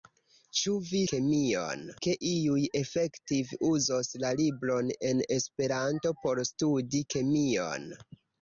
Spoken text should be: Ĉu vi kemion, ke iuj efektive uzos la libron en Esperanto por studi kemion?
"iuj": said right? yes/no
yes